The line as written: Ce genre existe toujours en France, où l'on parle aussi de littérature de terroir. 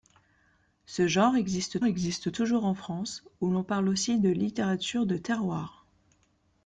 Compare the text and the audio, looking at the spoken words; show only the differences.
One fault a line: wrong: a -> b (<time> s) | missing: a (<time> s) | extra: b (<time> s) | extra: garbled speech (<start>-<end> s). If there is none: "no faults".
extra: existe (1.8 s)